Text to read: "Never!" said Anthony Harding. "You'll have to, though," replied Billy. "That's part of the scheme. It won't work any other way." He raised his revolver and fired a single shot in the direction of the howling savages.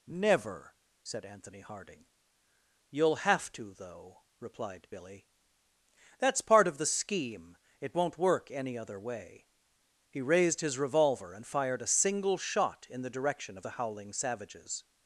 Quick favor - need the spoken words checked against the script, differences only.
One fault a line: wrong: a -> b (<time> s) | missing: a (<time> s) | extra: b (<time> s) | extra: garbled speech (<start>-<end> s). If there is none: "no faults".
no faults